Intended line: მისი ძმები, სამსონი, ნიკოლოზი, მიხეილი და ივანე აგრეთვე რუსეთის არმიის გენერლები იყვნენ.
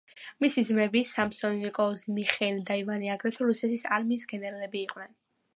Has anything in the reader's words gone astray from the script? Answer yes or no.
no